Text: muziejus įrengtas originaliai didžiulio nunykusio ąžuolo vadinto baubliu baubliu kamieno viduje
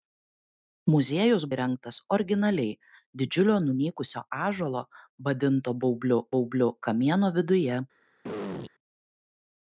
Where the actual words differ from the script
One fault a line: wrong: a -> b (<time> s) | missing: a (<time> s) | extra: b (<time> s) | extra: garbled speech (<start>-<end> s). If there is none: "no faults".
no faults